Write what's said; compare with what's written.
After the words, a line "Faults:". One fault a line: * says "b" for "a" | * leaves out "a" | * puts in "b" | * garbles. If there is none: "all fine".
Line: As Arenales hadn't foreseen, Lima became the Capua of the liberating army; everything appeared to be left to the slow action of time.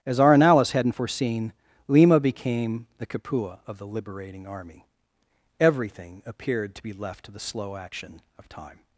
As Arenales hadn't foreseen, Lima became the Capua of the liberating army; everything appeared to be left to the slow action of time.
Faults:
all fine